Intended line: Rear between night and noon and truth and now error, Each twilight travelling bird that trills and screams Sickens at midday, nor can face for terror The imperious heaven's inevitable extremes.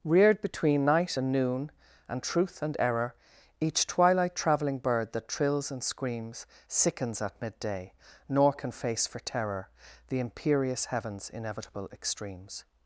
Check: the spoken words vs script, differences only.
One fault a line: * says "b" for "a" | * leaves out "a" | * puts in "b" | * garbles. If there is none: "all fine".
* says "Reared" for "Rear"
* leaves out "now"